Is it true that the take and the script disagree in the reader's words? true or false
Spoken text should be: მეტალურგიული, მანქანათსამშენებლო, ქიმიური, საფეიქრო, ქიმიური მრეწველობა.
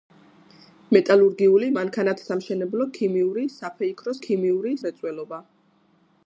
false